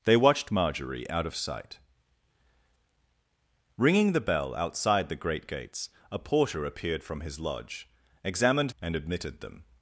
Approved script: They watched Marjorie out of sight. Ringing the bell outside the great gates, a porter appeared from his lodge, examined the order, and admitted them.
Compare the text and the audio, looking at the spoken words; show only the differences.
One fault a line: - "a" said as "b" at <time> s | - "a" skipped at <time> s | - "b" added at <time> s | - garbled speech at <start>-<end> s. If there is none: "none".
- "the order" skipped at 8.7 s